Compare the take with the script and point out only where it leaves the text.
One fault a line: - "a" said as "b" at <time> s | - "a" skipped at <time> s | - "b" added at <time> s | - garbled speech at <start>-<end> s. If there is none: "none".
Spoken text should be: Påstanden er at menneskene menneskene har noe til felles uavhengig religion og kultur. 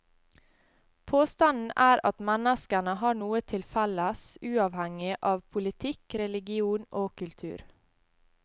- "menneskene" skipped at 3.0 s
- "av politikk" added at 5.3 s